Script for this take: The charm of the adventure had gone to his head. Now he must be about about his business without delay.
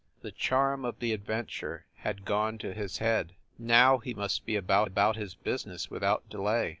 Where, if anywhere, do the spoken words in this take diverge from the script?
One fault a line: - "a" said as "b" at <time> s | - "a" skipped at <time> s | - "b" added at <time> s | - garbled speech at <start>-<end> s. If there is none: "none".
none